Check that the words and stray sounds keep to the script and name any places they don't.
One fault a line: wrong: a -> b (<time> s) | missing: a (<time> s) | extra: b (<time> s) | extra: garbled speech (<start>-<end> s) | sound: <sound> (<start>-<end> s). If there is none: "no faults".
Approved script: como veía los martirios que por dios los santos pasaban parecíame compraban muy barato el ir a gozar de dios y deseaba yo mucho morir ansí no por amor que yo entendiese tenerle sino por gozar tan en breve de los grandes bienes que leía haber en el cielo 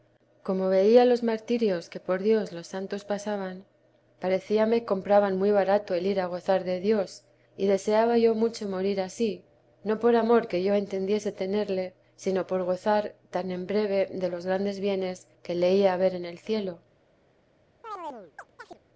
sound: chirp (17.8-18.8 s)